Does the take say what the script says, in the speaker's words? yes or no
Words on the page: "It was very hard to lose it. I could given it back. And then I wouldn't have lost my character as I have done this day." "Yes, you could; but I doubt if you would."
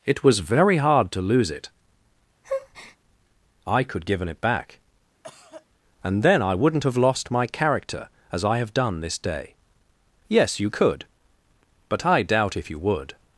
yes